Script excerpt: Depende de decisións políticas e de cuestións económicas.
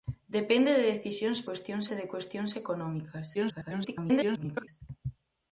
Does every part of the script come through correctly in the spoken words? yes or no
no